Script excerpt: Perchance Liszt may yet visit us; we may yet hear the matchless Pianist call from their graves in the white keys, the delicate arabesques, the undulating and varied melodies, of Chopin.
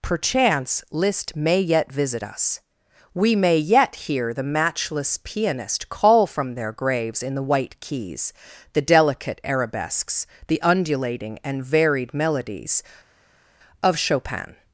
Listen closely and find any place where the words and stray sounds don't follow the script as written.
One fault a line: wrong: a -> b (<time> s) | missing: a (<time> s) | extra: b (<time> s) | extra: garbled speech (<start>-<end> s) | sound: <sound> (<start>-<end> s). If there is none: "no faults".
no faults